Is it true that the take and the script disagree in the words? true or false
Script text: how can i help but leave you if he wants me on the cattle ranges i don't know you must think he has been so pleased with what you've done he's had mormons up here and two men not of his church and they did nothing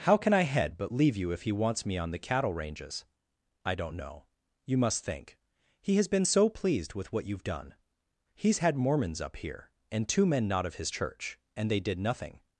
true